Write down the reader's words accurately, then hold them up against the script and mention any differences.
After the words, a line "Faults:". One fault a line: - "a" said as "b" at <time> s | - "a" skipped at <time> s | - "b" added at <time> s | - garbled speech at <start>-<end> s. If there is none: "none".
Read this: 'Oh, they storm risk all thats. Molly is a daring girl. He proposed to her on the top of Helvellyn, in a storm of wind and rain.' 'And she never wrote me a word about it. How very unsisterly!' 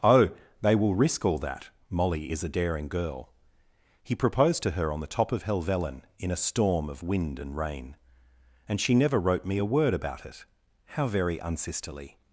'Oh, they will risk all that. Molly is a daring girl. He proposed to her on the top of Helvellyn, in a storm of wind and rain.' 'And she never wrote me a word about it. How very unsisterly!'
Faults:
- "storm" said as "will" at 0.8 s
- "thats" said as "that" at 1.4 s